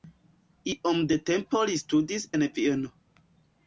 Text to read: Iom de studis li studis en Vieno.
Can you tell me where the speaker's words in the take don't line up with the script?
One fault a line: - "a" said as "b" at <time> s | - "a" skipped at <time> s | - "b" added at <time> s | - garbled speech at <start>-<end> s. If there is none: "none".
- "studis" said as "tempo" at 1.3 s